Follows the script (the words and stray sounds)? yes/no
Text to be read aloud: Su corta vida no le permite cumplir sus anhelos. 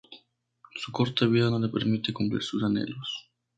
yes